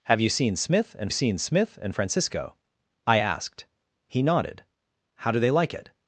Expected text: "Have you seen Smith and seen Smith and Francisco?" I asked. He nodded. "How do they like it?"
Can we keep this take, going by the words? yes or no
yes